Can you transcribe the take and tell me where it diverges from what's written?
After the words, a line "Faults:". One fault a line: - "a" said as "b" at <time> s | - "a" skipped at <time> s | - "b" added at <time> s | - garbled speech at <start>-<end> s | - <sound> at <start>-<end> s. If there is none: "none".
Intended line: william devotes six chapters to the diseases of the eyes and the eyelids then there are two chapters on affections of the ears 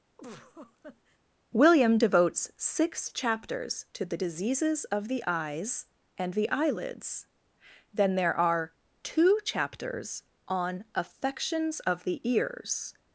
william devotes six chapters to the diseases of the eyes and the eyelids then there are two chapters on affections of the ears
Faults:
- laugh at 0.2-1.2 s